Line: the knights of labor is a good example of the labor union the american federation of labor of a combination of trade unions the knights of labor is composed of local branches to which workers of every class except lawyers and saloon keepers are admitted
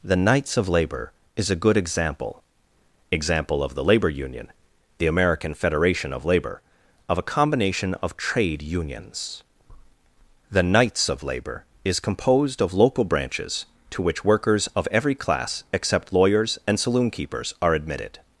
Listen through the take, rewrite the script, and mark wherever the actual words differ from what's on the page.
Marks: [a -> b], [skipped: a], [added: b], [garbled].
the knights of labor is a good example [added: example] of the labor union the american federation of labor of a combination of trade unions the knights of labor is composed of local branches to which workers of every class except lawyers and saloon keepers are admitted